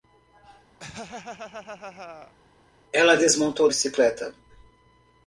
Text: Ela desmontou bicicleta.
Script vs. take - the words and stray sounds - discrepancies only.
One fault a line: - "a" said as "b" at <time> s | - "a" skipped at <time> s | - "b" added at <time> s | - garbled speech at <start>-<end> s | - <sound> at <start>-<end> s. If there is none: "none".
- laugh at 0.8-2.3 s